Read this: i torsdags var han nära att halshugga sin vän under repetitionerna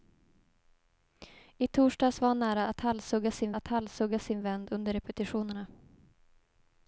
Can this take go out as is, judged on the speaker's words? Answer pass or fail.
fail